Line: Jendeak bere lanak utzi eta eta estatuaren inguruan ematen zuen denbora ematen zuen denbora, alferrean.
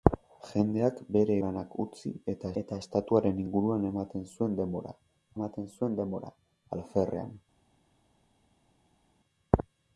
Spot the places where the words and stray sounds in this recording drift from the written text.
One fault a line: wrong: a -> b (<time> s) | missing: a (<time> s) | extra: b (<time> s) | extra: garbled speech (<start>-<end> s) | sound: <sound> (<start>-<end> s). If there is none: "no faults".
no faults